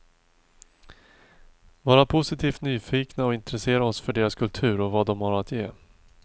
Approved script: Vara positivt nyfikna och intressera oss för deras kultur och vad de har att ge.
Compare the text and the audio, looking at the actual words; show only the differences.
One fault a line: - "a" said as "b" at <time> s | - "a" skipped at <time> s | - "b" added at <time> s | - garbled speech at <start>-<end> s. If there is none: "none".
none